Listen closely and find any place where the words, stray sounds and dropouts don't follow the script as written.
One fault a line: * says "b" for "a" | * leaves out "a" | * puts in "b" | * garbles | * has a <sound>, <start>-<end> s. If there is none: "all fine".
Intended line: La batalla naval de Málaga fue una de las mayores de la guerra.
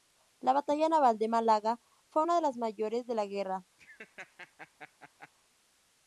* has a laugh, 3.8-5.3 s